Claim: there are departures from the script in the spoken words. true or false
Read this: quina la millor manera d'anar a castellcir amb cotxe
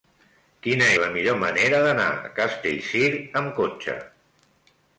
false